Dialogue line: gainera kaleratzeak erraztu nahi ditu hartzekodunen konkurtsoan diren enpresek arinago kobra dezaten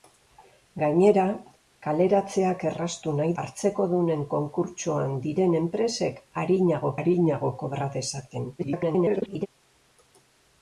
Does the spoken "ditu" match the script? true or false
false